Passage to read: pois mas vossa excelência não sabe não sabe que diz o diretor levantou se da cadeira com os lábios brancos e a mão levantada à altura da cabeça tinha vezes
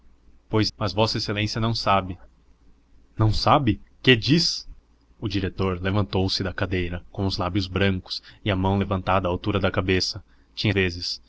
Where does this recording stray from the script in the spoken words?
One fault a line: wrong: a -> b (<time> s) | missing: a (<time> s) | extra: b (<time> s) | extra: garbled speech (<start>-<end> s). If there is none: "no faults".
no faults